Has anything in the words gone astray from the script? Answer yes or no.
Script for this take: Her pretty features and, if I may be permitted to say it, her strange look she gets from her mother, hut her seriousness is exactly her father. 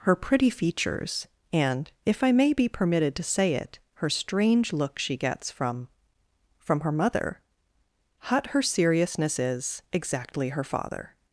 yes